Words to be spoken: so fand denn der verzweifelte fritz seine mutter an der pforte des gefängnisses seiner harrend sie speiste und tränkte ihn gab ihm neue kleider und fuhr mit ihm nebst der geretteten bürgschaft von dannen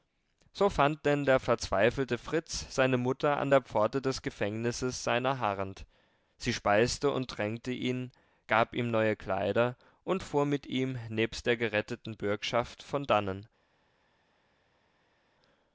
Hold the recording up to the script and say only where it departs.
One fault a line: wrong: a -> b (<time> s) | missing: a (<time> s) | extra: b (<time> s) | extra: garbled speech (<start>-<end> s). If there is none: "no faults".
no faults